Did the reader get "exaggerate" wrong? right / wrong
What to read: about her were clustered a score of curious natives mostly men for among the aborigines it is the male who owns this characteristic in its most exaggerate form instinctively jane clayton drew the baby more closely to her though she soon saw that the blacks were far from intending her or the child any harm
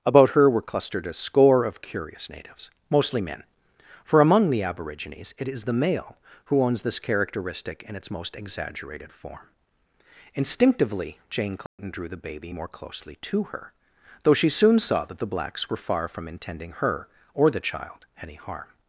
wrong